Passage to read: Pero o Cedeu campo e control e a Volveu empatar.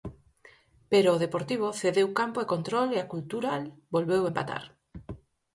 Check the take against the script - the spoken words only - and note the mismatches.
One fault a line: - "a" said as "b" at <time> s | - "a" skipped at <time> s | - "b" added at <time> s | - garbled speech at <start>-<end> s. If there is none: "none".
- "Deportivo" added at 1.2 s
- "Cultural" added at 3.1 s